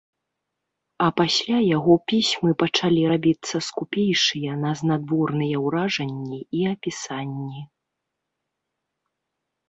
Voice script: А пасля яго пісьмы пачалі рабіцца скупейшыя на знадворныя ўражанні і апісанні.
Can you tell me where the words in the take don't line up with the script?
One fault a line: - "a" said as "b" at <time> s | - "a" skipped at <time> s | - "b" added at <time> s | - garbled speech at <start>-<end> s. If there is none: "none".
none